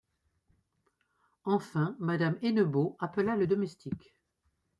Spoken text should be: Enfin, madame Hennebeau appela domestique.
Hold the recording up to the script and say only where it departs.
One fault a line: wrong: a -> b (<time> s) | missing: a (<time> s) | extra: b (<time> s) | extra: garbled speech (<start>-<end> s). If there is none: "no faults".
extra: le (3.4 s)